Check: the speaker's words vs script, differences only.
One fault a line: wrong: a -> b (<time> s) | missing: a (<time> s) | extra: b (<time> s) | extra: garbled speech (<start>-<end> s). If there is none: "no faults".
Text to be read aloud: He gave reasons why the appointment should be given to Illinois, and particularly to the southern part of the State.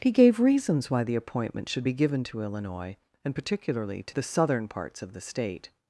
wrong: part -> parts (4.7 s)